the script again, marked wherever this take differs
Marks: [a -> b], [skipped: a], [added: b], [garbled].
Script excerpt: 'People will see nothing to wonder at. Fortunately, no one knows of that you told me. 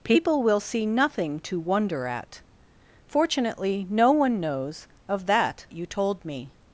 'People will see nothing to wonder at. Fortunately, no one knows of that you told me.